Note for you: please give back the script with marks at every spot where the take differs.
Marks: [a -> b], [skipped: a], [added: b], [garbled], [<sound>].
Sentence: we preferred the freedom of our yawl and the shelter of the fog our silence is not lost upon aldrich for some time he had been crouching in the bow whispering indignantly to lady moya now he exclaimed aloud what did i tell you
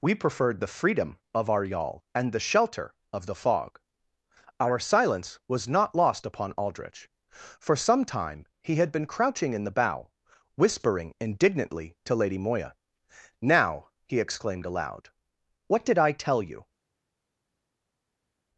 we preferred the freedom of our yawl and the shelter of the fog our silence [is -> was] not lost upon aldrich for some time he had been crouching in the bow whispering indignantly to lady moya now he exclaimed aloud what did i tell you